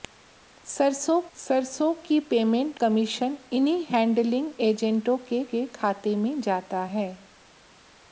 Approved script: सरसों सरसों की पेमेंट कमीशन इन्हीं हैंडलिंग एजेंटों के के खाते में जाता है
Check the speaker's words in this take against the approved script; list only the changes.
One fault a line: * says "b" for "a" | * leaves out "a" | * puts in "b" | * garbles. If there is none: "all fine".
all fine